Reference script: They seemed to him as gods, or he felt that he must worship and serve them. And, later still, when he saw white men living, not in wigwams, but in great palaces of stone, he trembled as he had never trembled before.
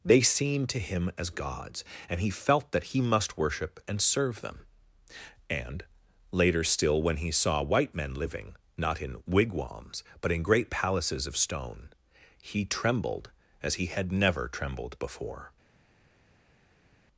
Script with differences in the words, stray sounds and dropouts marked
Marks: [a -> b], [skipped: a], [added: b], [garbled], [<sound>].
They seemed to him as gods, [or -> and] he felt that he must worship and serve them. And, later still, when he saw white men living, not in wigwams, but in great palaces of stone, he trembled as he had never trembled before.